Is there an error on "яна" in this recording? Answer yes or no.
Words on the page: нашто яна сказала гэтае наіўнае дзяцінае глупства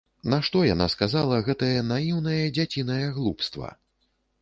no